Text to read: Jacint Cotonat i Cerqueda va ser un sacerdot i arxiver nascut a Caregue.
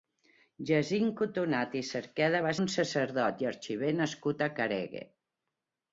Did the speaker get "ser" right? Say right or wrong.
wrong